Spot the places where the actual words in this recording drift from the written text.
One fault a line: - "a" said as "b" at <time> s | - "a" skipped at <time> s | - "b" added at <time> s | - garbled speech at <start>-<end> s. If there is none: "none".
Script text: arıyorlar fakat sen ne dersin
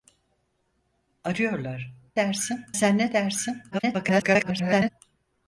- "fakat" said as "dersin" at 2.2 s
- garbled speech at 3.7-4.9 s